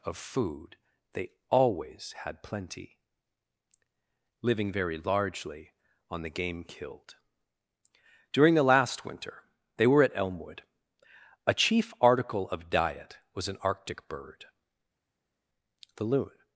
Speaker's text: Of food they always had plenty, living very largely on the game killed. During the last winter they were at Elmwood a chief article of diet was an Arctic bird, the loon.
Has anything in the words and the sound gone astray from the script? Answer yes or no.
no